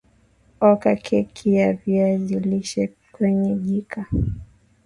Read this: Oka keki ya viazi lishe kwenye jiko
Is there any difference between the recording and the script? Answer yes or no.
no